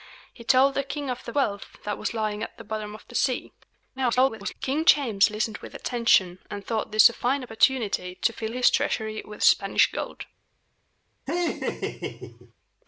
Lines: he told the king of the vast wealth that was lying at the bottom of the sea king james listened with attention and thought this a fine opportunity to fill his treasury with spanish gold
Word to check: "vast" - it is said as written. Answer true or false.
false